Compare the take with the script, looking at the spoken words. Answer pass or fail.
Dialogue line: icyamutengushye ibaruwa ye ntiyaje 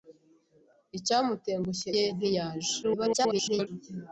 fail